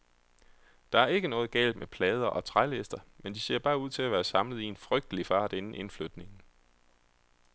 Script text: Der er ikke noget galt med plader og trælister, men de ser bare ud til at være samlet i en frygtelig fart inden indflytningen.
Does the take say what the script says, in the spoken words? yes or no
yes